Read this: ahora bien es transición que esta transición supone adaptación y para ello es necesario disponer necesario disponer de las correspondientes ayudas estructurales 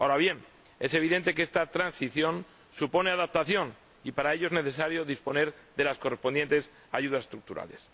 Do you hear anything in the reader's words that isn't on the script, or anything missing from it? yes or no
yes